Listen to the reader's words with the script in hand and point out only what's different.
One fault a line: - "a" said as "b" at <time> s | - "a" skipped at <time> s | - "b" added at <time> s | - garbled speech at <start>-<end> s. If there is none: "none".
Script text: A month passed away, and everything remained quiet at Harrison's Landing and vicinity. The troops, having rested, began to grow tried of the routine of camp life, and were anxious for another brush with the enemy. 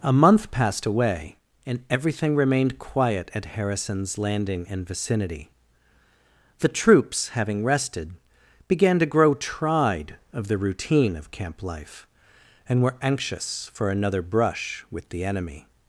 none